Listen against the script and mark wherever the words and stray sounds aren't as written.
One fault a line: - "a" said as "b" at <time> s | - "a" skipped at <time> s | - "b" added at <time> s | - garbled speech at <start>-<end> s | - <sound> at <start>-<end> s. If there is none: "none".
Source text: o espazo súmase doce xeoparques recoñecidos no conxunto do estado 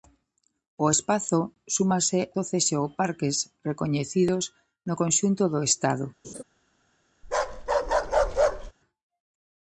- laugh at 6.2-6.4 s
- bark at 7.2-8.7 s